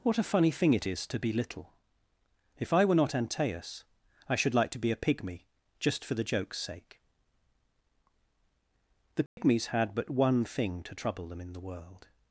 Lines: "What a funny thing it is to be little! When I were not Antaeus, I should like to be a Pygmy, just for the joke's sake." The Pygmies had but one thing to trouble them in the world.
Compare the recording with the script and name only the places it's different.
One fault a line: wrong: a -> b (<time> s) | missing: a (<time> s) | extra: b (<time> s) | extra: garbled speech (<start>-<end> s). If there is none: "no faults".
wrong: When -> If (2.6 s)